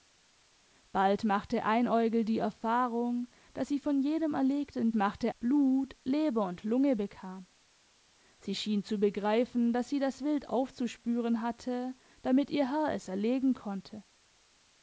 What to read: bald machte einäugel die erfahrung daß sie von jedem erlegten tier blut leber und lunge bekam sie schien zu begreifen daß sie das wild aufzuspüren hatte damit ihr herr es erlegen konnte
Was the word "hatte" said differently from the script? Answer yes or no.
no